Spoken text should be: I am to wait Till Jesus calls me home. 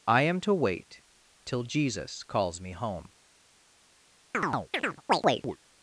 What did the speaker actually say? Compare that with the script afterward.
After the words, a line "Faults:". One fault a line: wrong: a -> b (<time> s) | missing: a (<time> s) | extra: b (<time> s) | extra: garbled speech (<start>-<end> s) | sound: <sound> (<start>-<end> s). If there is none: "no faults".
I am to wait Till Jesus calls me home.
Faults:
sound: chirp (4.3-5.6 s)